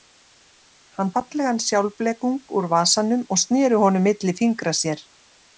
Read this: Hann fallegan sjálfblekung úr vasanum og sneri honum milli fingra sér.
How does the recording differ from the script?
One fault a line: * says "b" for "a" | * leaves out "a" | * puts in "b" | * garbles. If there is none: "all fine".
all fine